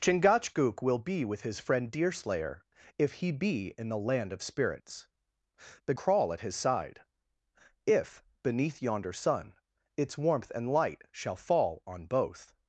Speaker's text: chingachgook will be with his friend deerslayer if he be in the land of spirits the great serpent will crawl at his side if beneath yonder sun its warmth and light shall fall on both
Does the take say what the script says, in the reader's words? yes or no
no